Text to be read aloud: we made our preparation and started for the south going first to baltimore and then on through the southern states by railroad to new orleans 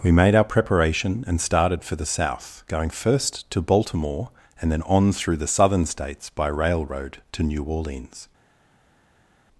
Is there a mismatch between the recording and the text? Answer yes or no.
no